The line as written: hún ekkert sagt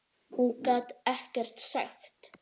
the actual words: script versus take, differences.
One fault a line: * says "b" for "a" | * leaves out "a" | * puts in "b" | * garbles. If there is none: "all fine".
* puts in "gat"